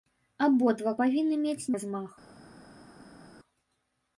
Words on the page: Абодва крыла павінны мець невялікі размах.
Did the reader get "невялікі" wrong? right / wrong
wrong